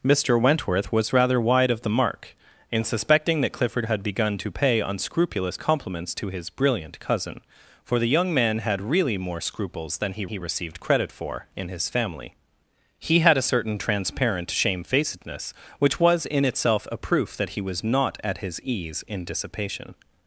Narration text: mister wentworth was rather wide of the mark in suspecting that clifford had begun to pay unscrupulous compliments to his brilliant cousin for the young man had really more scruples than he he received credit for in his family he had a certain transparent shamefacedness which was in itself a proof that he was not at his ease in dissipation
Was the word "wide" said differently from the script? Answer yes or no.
no